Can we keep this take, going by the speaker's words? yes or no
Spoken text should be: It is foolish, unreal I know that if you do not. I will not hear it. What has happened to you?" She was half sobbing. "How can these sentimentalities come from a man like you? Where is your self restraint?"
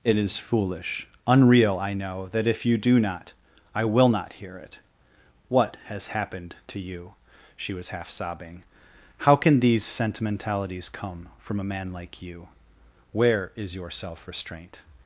yes